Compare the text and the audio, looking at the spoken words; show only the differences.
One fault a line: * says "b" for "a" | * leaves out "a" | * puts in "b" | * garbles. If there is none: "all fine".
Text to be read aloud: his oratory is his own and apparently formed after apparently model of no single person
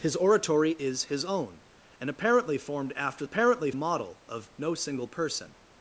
all fine